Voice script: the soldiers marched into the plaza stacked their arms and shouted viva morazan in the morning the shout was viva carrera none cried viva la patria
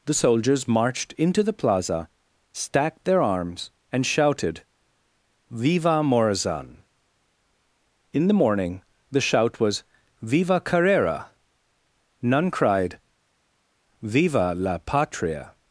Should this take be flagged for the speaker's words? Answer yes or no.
no